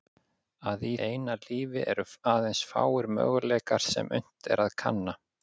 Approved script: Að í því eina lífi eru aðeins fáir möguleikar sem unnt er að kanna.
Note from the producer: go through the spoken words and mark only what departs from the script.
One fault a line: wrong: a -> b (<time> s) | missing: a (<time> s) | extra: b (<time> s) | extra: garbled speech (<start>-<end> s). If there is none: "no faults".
missing: því (0.9 s)